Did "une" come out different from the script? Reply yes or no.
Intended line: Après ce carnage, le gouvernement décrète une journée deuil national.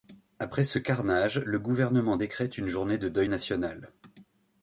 no